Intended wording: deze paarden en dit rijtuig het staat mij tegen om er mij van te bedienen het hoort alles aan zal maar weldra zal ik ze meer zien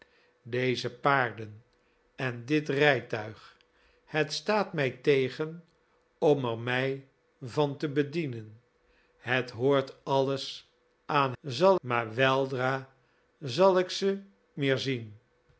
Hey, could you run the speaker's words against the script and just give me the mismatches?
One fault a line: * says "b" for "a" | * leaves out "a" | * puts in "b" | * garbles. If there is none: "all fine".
all fine